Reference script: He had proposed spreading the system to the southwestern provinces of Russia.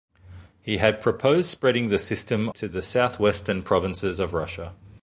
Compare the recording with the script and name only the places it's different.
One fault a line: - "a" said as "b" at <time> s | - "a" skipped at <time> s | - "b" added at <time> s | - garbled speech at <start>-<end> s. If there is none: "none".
none